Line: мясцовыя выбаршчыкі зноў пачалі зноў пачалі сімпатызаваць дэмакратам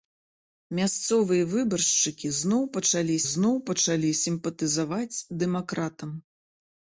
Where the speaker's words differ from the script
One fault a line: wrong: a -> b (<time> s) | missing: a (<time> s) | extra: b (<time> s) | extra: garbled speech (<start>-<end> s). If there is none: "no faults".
no faults